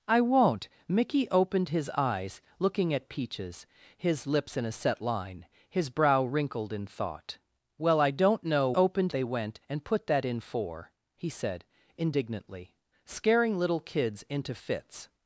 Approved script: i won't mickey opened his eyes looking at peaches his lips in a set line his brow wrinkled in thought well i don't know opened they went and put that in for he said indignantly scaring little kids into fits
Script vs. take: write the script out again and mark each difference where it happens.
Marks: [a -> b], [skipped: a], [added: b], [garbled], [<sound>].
i won't mickey opened his eyes looking at peaches his lips in a set line his brow wrinkled in thought well i don't know opened they went and put that in for he said indignantly scaring little kids into fits